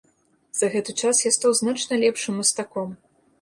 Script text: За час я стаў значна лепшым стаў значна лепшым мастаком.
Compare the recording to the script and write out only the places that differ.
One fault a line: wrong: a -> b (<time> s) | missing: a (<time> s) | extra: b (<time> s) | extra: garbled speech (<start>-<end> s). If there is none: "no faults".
extra: гэты (0.8 s)
missing: стаў значна лепшым (2.4 s)